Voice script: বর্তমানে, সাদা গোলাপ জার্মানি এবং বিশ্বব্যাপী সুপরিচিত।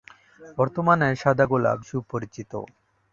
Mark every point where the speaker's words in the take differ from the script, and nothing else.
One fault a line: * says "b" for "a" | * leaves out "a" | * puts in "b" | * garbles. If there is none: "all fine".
* leaves out "জার্মানি এবং বিশ্বব্যাপী"